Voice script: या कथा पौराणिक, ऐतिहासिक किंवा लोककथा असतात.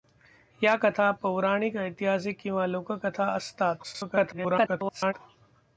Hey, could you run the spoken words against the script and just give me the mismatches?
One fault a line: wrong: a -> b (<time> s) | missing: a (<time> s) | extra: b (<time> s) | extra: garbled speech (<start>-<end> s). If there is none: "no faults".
extra: garbled speech (3.8-5.1 s)